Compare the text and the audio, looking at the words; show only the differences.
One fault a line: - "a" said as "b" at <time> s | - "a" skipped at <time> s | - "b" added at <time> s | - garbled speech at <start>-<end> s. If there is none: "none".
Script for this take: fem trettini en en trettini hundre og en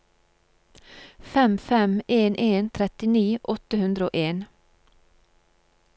- "trettini" said as "fem" at 1.6 s
- "åtte" added at 3.5 s